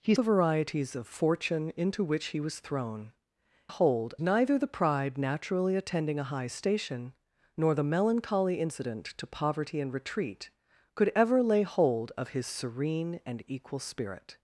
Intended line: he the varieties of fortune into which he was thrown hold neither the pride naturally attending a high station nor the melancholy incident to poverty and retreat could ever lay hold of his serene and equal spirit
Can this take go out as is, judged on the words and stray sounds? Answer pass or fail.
pass